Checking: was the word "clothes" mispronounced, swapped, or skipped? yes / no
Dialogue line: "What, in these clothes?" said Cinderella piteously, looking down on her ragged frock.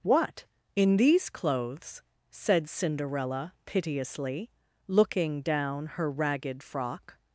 no